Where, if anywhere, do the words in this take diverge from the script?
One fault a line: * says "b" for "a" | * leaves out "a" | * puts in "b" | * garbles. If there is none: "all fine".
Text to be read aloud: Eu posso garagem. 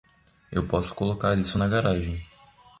* puts in "colocar isso na"